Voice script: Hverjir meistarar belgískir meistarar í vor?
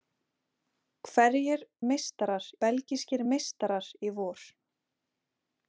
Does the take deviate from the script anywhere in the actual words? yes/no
no